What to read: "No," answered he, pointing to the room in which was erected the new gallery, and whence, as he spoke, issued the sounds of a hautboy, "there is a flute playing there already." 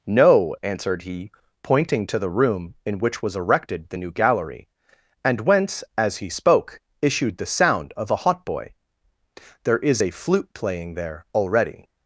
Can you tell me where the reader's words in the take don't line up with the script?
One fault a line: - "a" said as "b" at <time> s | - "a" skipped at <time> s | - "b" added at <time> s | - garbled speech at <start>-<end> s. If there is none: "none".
- "sounds" said as "sound" at 7.5 s